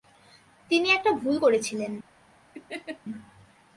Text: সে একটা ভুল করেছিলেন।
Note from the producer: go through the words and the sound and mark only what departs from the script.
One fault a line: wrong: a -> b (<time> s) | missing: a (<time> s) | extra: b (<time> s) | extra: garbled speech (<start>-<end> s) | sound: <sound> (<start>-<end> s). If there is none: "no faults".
wrong: সে -> তিনি (0.7 s)
sound: laugh (2.5-3.0 s)